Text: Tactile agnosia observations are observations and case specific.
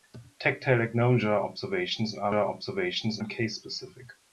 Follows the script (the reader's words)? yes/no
yes